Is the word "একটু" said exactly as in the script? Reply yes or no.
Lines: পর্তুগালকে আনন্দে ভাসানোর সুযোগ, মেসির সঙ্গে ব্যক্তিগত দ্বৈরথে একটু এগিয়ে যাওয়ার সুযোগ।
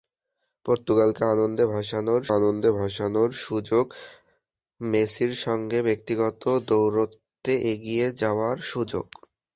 no